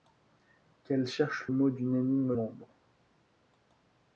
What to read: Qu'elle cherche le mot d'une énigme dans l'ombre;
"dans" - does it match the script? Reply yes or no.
no